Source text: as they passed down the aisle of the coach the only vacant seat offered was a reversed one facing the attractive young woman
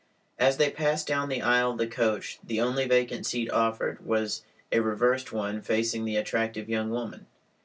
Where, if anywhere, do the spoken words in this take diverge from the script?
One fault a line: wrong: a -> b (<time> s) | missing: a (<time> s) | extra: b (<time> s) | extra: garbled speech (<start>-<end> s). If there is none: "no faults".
no faults